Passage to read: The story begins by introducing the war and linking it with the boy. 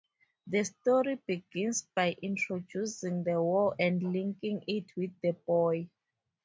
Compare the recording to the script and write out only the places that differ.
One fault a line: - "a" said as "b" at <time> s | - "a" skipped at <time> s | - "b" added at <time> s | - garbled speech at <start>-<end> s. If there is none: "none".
none